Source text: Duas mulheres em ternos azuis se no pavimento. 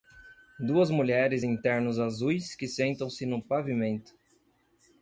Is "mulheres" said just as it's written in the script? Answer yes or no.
yes